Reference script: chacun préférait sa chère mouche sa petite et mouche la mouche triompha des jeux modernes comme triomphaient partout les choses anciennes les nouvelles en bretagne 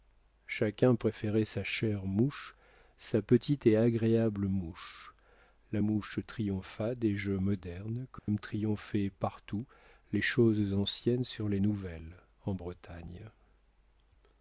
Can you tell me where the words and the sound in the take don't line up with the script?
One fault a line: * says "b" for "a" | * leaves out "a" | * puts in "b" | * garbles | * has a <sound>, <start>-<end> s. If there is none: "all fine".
* puts in "agréable"
* has a dropout, 8.2-8.3 s
* puts in "sur"